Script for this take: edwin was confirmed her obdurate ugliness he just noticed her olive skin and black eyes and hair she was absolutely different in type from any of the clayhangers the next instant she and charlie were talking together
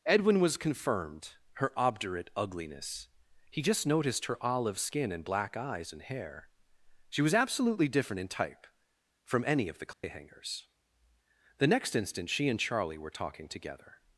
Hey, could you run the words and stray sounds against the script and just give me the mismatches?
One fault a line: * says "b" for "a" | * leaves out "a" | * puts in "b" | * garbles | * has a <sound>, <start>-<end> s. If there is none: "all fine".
* has a dropout, 9.9-10.0 s